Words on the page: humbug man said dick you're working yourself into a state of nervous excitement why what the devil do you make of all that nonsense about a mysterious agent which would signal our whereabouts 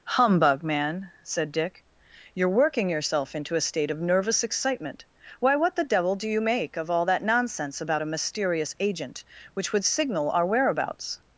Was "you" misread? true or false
false